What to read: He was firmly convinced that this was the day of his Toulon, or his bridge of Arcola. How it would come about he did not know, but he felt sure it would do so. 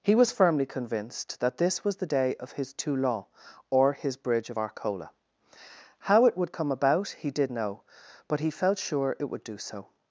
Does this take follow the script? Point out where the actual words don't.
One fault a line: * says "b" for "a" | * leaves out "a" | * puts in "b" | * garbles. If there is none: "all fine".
* leaves out "not"